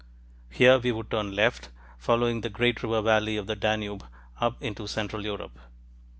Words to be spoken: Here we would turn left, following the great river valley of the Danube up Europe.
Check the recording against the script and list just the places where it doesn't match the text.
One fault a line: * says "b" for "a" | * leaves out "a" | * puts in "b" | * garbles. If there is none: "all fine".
* puts in "into central"